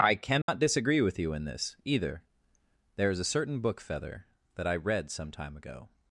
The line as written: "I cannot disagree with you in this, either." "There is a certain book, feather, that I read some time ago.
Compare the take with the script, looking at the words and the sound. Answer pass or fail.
fail